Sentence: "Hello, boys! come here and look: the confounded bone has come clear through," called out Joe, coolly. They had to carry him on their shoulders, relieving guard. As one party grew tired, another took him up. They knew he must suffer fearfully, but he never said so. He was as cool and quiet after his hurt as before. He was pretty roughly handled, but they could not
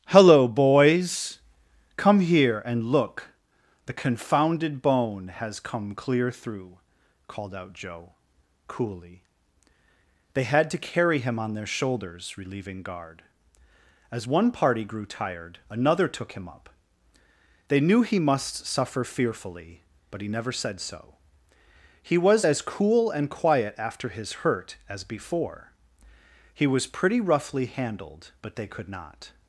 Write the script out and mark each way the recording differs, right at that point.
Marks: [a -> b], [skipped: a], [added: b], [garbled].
"Hello, boys! come here and look: the confounded bone has come clear through," called out Joe, coolly. They had to carry him on their shoulders, relieving guard. As one party grew tired, another took him up. They knew he must suffer fearfully, but he never said so. He was as cool and quiet after his hurt as before. He was pretty roughly handled, but they could not